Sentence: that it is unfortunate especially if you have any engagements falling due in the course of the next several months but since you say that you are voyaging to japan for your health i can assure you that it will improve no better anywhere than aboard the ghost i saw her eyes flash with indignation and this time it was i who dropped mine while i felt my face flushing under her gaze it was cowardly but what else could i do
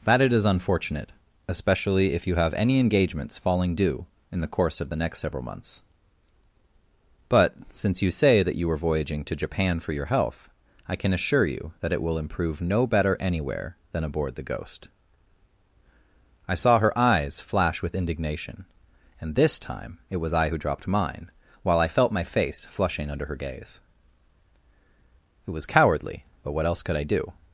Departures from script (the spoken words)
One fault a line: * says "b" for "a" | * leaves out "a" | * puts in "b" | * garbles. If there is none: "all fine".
all fine